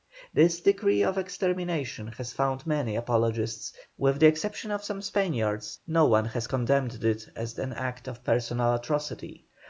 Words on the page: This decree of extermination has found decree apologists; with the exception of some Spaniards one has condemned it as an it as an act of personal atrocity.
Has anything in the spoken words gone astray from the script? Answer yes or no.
yes